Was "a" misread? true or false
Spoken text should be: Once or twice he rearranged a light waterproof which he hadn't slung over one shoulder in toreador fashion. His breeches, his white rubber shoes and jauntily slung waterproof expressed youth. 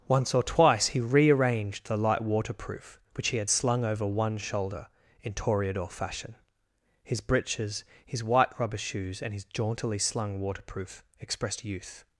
true